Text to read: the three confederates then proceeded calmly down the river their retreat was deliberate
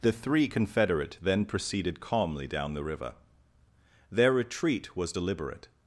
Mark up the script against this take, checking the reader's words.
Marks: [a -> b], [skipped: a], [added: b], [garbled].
the three [confederates -> confederate] then proceeded calmly down the river their retreat was deliberate